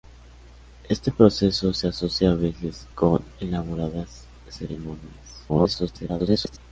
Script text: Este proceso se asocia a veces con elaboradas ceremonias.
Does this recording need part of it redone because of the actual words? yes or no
yes